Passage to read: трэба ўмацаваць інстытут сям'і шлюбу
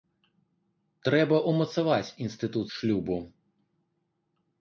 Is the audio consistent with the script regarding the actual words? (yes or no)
no